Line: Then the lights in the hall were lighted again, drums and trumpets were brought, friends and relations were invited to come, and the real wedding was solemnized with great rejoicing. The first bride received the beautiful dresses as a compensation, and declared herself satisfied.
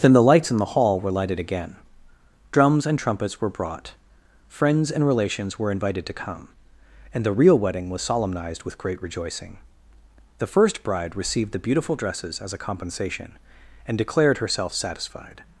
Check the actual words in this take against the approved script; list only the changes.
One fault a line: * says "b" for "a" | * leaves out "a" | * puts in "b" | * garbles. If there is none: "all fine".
all fine